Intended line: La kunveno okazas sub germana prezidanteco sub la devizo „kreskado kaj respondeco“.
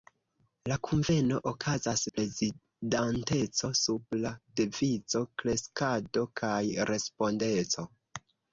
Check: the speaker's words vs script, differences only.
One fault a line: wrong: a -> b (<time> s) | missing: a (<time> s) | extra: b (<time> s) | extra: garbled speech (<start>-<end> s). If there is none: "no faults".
missing: sub germana (2.0 s)